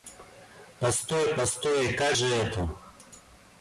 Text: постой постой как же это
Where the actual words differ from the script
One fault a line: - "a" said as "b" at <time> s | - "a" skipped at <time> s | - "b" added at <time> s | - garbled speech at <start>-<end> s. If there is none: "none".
none